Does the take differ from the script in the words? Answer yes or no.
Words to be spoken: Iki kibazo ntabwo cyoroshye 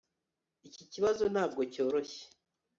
no